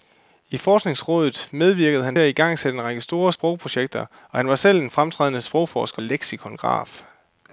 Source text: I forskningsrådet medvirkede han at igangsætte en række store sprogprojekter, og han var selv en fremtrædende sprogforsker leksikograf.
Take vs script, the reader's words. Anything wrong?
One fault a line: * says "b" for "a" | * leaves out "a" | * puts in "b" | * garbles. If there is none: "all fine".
all fine